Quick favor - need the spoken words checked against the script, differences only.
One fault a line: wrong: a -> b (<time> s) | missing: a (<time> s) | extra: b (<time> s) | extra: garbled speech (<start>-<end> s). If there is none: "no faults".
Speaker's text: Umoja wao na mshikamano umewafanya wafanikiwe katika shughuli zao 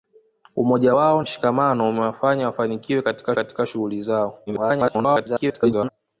missing: na (1.2 s)
extra: katika (3.3 s)
extra: garbled speech (4.5-5.9 s)